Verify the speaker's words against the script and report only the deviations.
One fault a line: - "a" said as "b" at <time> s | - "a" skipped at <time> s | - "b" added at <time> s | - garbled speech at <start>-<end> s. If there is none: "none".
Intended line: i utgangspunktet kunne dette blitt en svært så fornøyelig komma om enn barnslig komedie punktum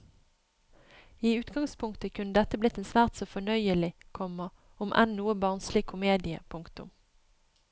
- "noe" added at 5.2 s